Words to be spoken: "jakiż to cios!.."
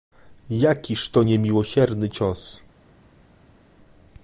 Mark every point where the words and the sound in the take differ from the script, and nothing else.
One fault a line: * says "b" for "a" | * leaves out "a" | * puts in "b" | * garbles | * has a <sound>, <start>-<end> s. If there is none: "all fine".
* puts in "niemiłosierny"